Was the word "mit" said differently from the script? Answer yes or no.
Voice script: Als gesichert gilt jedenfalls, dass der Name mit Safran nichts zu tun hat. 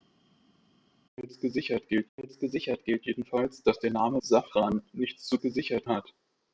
yes